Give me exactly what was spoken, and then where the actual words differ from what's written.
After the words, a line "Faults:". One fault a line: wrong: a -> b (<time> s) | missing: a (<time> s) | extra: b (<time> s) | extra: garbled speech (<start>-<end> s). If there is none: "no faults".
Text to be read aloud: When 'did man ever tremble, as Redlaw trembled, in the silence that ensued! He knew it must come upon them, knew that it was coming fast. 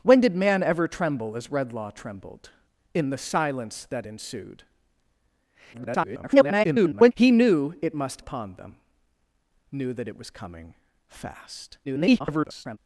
When 'did man ever tremble, as Redlaw trembled, in the silence that ensued! [garbled] He knew it must upon them, knew that it was coming fast. [garbled]
Faults:
extra: garbled speech (5.7-7.1 s)
missing: come (8.2 s)
extra: garbled speech (11.8-12.8 s)